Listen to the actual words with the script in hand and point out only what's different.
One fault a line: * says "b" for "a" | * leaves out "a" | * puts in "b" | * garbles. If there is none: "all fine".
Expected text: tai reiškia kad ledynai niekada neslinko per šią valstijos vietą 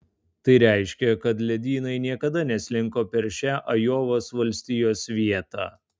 * puts in "ajovos"